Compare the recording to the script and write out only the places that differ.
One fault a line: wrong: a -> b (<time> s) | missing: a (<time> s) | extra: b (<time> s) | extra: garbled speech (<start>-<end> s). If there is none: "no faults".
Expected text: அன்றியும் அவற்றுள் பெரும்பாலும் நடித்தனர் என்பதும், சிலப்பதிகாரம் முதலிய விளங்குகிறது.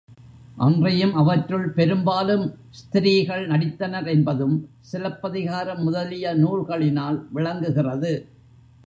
extra: ஸ்திரீகள் (2.7 s)
extra: நூல்களினால் (6.4 s)